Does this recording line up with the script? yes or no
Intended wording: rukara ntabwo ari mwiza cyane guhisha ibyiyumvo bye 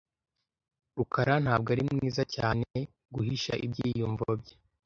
yes